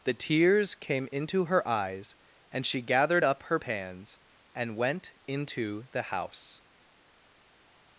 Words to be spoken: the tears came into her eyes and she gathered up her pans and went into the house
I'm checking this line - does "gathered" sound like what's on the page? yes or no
yes